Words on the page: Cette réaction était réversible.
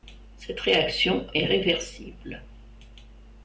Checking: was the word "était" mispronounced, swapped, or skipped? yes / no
yes